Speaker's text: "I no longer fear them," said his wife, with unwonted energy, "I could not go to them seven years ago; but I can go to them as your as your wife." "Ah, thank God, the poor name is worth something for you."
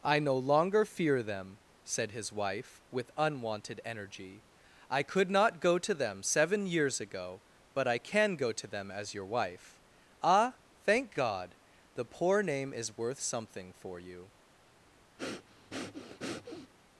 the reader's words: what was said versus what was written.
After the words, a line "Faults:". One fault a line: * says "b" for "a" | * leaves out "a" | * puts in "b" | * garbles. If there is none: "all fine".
"I no longer fear them," said his wife, with unwonted energy, "I could not go to them seven years ago; but I can go to them as your wife." "Ah, thank God, the poor name is worth something for you."
Faults:
* leaves out "as your"